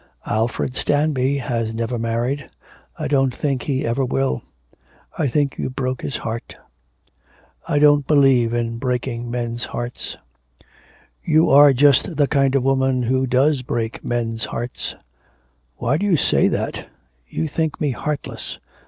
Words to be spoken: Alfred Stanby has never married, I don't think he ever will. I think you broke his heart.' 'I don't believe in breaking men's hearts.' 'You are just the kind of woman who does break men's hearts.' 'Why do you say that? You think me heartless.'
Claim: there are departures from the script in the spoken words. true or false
false